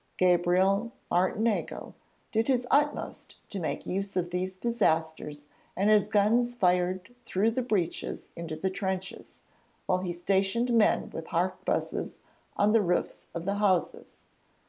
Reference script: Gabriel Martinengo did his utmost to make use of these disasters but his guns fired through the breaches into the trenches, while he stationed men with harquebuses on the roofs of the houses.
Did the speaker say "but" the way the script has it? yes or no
no